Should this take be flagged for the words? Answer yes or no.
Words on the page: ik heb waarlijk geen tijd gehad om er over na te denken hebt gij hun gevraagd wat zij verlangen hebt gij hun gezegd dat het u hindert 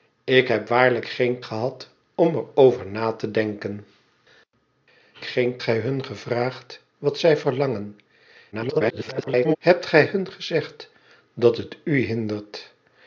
yes